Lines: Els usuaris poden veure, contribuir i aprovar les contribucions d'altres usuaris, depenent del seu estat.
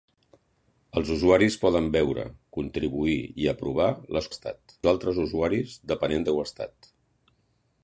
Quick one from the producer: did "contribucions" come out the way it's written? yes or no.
no